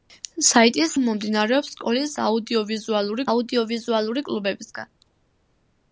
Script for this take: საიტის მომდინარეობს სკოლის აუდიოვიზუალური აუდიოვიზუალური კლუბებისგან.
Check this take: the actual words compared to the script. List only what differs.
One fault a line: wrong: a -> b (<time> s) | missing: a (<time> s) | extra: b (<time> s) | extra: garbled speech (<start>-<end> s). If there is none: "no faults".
no faults